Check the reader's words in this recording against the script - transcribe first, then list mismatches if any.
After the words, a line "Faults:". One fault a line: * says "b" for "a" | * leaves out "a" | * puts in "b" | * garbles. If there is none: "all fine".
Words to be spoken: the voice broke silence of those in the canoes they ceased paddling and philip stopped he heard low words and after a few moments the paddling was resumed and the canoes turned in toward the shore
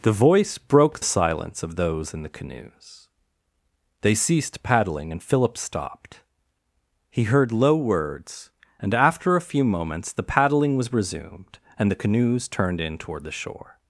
the voice broke silence of those in the canoes they ceased paddling and philip stopped he heard low words and after a few moments the paddling was resumed and the canoes turned in toward the shore
Faults:
all fine